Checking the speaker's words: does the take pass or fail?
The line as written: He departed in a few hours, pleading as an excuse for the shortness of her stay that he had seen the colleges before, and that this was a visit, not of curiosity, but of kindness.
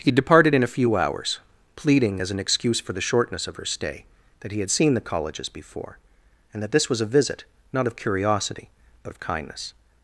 pass